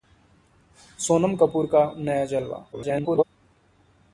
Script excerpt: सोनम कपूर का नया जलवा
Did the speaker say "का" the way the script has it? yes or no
yes